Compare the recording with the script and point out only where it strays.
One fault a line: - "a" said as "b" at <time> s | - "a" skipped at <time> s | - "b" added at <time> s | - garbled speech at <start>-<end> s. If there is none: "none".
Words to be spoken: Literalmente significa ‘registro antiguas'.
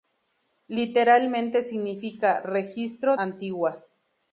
none